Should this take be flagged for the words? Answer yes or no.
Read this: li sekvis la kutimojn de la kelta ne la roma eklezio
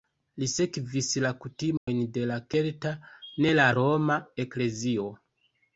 no